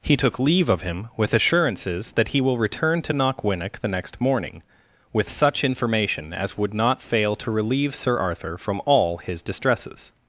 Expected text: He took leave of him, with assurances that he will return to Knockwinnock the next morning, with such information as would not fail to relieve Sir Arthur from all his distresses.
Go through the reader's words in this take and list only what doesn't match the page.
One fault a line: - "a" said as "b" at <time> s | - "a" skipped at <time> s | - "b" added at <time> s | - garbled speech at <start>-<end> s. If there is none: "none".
none